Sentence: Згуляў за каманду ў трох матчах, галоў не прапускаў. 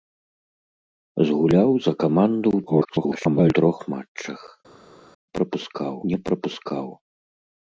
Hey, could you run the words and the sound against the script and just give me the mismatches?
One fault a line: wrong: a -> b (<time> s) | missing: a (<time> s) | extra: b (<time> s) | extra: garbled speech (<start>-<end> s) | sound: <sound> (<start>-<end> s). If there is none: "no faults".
extra: garbled speech (2.7-3.5 s)
wrong: галоў -> прапускаў (5.4 s)